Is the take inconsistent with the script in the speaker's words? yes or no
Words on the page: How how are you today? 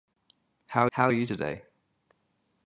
no